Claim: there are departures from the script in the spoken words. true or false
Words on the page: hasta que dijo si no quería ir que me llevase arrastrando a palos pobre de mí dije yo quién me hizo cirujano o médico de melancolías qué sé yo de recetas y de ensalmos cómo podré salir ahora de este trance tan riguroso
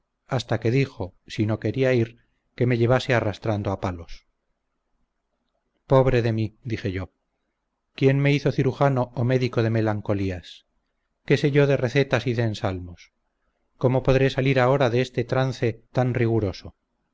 false